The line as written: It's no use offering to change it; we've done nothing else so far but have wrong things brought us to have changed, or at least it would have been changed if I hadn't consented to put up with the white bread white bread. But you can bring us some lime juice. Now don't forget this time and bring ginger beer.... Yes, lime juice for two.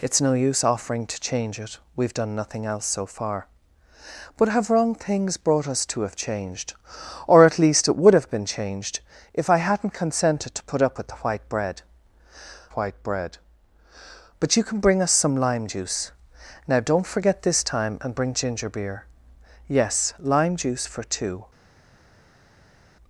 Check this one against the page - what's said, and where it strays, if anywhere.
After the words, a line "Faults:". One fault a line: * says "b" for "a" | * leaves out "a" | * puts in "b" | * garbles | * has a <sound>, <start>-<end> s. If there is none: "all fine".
It's no use offering to change it; we've done nothing else so far but have wrong things brought us to have changed, or at least it would have been changed if I hadn't consented to put up with the white bread white bread. But you can bring us some lime juice. Now don't forget this time and bring ginger beer.... Yes, lime juice for two.
Faults:
all fine